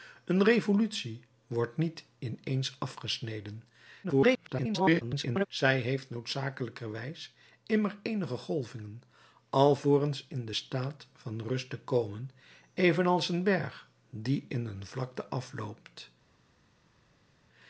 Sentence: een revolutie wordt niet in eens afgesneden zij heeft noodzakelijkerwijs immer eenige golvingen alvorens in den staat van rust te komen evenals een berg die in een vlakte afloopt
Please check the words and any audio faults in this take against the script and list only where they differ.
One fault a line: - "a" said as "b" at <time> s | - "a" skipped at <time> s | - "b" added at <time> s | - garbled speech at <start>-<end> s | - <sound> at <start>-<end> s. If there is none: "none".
- garbled speech at 4.0-5.5 s